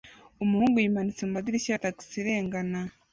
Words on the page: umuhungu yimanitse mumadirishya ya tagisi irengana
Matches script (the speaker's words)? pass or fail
pass